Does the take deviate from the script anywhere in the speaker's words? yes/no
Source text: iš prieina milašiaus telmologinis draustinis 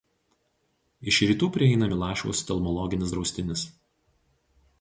yes